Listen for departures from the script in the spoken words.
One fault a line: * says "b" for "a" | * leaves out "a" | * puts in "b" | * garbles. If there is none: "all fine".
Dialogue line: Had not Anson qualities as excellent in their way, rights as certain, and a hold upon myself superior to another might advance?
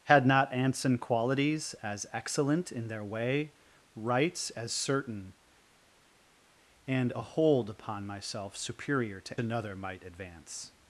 all fine